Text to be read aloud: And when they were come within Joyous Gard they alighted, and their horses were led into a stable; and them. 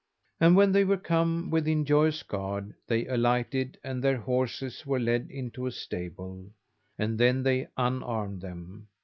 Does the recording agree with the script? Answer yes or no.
no